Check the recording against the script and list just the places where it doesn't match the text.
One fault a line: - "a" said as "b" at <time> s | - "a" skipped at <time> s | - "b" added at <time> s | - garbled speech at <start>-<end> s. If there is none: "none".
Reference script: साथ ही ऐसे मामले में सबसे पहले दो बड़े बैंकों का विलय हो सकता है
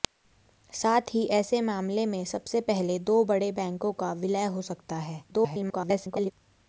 - garbled speech at 5.3-6.3 s